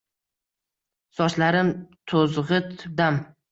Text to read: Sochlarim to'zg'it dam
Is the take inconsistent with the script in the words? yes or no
no